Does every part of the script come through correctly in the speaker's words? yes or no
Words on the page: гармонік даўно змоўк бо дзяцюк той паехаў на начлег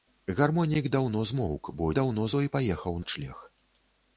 no